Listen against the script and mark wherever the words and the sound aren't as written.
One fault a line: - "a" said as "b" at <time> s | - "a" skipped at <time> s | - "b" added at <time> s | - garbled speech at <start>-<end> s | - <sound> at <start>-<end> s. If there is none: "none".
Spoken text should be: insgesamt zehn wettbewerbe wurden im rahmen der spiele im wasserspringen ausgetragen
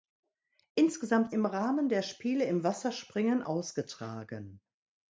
- "zehn wettbewerbe wurden" skipped at 1.3 s